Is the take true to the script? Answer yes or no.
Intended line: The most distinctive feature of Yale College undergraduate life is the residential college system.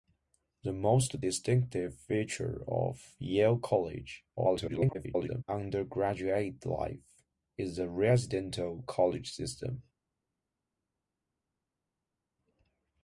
no